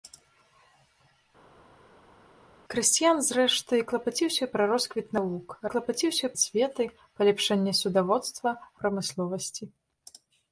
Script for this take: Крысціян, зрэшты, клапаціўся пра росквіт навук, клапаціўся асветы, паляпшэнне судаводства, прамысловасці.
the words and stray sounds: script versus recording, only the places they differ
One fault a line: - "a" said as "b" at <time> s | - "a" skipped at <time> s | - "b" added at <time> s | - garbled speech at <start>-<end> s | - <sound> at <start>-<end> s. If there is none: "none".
none